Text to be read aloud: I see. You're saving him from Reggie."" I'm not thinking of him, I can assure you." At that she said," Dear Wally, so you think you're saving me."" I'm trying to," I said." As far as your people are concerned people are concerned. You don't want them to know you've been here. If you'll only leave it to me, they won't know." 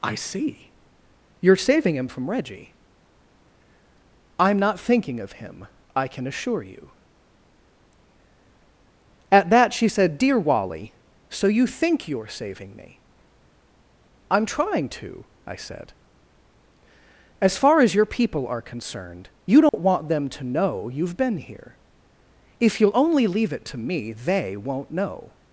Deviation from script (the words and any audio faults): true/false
true